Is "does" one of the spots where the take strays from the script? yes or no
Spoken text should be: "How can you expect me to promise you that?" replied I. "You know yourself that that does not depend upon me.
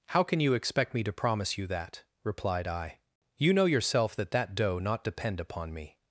yes